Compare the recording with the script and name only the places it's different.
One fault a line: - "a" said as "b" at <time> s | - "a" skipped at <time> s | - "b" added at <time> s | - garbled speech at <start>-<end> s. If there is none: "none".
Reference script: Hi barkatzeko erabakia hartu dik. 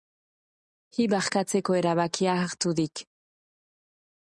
none